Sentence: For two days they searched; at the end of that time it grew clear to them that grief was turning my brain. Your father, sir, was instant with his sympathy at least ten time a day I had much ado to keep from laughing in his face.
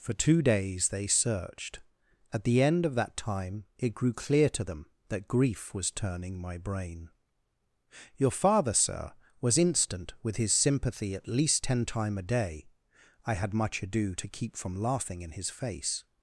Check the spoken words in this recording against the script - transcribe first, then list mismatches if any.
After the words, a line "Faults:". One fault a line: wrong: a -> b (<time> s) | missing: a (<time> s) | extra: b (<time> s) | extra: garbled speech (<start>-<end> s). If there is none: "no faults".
For two days they searched; at the end of that time it grew clear to them that grief was turning my brain. Your father, sir, was instant with his sympathy at least ten time a day I had much ado to keep from laughing in his face.
Faults:
no faults